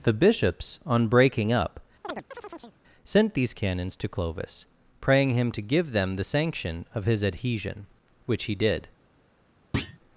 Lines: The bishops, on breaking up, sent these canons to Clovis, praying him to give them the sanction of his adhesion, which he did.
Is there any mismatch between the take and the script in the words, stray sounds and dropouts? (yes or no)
yes